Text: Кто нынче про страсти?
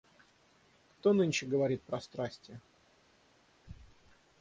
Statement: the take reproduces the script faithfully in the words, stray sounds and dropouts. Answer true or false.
false